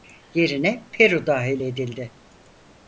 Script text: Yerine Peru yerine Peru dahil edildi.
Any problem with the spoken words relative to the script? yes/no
yes